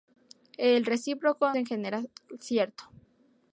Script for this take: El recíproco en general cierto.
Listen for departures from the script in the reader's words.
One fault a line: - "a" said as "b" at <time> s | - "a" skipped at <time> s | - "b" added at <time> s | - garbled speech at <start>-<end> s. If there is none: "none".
none